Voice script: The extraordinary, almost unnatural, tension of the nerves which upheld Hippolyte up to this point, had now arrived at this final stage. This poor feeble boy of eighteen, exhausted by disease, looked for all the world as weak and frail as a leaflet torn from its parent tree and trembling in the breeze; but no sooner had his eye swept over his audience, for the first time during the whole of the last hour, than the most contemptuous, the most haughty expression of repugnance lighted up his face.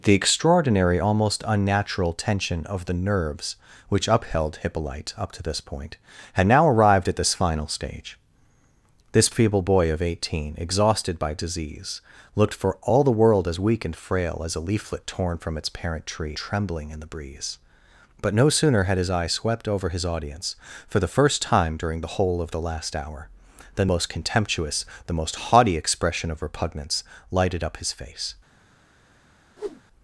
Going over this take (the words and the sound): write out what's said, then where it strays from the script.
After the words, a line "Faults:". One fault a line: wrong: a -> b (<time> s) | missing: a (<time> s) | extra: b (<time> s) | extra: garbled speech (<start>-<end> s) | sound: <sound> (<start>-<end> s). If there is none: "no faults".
The extraordinary, almost unnatural, tension of the nerves which upheld Hippolyte up to this point, had now arrived at this final stage. This feeble boy of eighteen, exhausted by disease, looked for all the world as weak and frail as a leaflet torn from its parent tree trembling in the breeze; but no sooner had his eye swept over his audience, for the first time during the whole of the last hour, than most contemptuous, the most haughty expression of repugnance lighted up his face.
Faults:
missing: poor (9.3 s)
missing: and (16.4 s)
missing: the (23.9 s)
sound: whoosh (29.6-29.8 s)